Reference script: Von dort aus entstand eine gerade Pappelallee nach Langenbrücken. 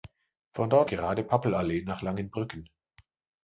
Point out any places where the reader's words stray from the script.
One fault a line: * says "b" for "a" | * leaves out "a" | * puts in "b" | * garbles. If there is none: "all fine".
* leaves out "aus entstand eine"